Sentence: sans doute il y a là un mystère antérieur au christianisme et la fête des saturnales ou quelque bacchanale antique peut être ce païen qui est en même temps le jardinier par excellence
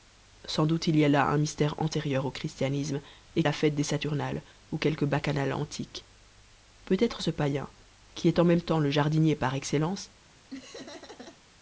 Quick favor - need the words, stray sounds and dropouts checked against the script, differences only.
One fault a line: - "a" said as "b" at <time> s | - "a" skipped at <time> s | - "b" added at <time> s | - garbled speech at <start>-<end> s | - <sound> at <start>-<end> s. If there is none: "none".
- laugh at 10.5-11.4 s